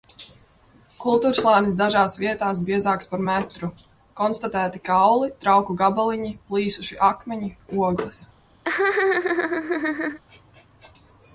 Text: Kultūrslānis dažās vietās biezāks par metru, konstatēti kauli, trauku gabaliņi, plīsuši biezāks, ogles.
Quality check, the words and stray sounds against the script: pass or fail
fail